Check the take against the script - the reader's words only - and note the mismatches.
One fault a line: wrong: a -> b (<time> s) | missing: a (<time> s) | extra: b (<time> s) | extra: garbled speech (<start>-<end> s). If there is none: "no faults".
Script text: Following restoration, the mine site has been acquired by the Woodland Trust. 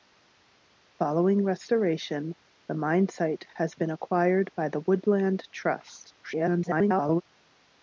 extra: garbled speech (6.2-7.2 s)